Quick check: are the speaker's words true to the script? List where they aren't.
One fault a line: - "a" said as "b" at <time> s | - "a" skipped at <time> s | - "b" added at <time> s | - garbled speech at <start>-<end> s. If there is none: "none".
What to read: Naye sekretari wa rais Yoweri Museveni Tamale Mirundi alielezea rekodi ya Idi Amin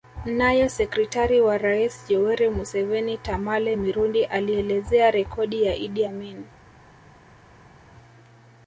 none